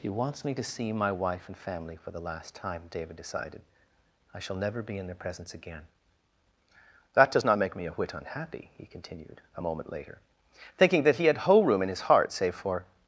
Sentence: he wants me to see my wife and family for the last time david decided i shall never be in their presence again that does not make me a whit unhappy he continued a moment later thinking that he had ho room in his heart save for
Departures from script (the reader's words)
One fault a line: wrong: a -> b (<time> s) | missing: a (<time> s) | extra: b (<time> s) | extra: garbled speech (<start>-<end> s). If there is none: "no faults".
wrong: ho -> whole (11.4 s)